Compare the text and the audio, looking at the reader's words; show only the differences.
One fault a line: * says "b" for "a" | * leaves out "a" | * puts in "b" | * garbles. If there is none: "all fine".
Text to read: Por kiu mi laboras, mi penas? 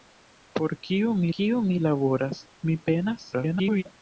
* puts in "kiu mi"
* garbles